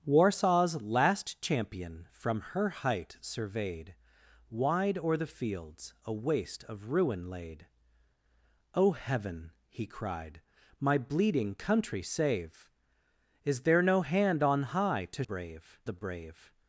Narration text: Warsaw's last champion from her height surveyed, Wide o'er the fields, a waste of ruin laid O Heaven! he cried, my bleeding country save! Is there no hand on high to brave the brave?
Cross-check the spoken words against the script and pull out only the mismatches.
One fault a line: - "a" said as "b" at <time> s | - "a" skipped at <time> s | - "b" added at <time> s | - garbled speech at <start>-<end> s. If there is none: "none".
none